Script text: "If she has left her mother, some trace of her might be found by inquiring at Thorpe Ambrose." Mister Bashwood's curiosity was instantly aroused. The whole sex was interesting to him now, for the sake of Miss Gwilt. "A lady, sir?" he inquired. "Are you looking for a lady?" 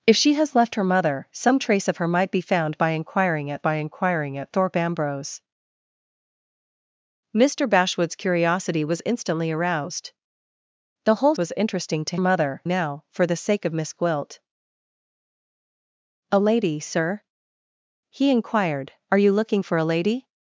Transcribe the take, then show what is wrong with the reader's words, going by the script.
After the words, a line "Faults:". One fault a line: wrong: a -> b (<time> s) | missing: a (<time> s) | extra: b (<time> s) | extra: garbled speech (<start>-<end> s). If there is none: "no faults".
"If she has left her mother, some trace of her might be found by inquiring at by inquiring at Thorpe Ambrose." Mister Bashwood's curiosity was instantly aroused. The whole was interesting to mother now, for the sake of Miss Gwilt. "A lady, sir?" he inquired. "Are you looking for a lady?"
Faults:
extra: by inquiring at (3.6 s)
missing: sex (11.4 s)
wrong: him -> mother (12.2 s)